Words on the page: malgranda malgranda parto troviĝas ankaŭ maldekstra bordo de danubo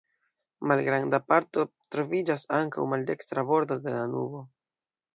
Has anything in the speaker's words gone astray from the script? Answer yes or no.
yes